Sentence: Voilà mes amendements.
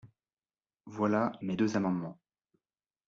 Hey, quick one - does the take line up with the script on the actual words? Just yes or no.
no